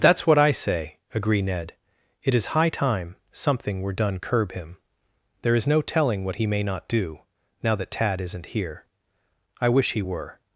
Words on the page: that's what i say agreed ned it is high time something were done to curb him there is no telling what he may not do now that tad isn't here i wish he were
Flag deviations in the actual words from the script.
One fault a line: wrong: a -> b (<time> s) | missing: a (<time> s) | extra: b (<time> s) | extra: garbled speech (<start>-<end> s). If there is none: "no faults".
wrong: agreed -> agree (1.1 s)
missing: to (4.2 s)